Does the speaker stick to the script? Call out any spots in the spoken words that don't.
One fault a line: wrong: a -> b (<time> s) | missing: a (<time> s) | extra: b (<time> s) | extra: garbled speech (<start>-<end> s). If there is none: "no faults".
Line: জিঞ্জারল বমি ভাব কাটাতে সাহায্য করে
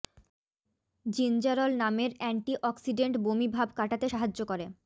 extra: নামের অ্যান্টি অক্সিডেন্ট (1.8 s)